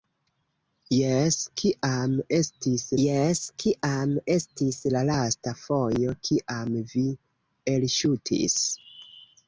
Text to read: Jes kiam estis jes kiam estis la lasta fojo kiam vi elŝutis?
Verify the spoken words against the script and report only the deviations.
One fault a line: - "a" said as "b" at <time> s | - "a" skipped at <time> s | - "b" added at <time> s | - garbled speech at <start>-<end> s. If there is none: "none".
none